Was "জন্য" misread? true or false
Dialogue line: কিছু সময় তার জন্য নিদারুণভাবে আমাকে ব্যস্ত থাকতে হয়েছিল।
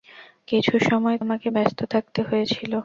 true